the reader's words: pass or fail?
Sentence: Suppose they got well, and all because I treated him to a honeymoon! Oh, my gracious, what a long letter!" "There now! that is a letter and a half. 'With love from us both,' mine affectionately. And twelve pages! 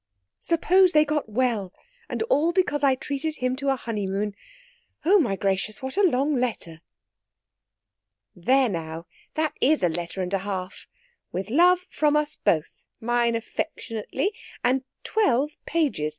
pass